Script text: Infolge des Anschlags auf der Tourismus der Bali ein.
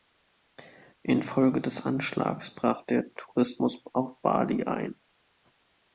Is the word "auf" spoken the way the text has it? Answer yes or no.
no